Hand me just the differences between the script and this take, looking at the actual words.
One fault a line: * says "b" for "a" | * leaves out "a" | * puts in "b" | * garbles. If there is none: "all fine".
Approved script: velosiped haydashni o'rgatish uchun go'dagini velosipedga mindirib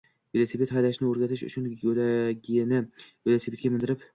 all fine